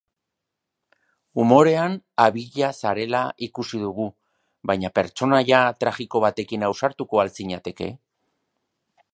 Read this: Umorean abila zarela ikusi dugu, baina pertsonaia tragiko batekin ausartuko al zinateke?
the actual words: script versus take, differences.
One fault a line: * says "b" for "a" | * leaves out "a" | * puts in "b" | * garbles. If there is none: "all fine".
all fine